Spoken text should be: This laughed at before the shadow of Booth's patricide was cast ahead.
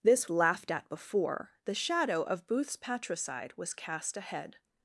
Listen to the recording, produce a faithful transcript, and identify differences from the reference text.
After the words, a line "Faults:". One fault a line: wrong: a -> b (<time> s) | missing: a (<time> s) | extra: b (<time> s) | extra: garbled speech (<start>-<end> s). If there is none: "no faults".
This laughed at before the shadow of Booth's patricide was cast ahead.
Faults:
no faults